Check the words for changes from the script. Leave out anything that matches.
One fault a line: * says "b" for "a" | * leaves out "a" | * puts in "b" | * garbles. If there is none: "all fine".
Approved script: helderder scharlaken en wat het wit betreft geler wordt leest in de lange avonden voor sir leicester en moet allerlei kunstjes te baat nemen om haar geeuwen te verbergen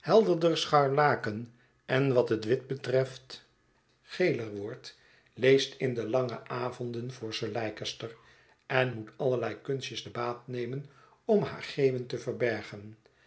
all fine